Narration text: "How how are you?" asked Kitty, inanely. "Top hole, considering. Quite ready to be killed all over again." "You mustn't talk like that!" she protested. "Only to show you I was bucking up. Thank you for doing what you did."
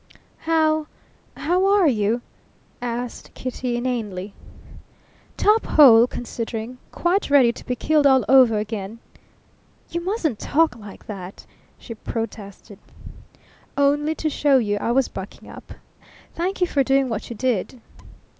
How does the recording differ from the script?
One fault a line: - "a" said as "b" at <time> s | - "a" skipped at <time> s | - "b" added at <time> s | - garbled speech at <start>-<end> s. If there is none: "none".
none